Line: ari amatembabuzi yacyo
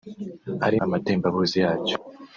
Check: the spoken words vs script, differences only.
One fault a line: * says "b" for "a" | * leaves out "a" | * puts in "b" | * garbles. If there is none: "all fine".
all fine